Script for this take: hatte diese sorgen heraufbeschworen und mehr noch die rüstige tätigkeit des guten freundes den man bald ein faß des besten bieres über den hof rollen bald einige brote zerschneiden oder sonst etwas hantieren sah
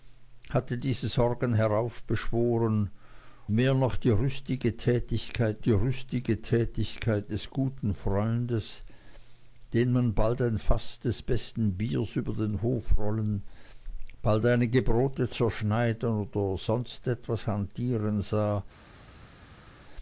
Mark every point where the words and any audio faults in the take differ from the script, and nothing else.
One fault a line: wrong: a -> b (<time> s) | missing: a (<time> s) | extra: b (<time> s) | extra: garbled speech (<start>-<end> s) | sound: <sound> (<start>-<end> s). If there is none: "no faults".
missing: und (2.9 s)
extra: die rüstige tätigkeit (5.6 s)